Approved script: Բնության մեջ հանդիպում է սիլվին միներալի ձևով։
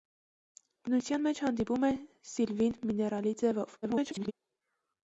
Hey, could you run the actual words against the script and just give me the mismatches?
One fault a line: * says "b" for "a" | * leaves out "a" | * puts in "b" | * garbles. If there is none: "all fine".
* garbles